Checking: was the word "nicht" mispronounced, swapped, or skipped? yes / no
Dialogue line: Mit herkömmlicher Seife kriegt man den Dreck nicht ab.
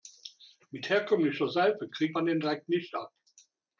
no